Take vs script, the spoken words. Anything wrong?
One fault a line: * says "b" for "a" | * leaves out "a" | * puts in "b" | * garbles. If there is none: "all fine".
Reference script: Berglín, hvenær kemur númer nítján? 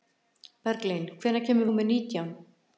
all fine